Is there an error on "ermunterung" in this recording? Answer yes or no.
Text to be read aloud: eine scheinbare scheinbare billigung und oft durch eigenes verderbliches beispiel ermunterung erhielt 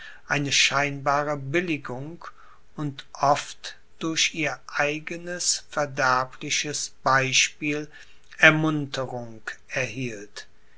no